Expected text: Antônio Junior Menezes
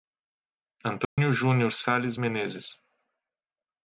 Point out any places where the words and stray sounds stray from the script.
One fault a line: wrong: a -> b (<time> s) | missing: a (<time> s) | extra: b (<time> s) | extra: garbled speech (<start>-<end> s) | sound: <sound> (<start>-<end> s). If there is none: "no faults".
sound: dropout (1.0-1.2 s)
extra: Sales (1.7 s)